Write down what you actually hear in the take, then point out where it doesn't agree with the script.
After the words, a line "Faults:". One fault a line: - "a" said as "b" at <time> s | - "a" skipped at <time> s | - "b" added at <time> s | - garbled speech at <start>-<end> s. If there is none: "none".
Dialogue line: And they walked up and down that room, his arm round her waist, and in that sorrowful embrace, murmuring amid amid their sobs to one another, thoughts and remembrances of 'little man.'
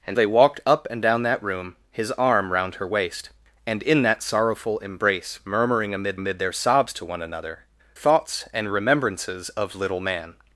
And they walked up and down that room, his arm round her waist, and in that sorrowful embrace, murmuring amid amid their sobs to one another, thoughts and remembrances of 'little man.'
Faults:
none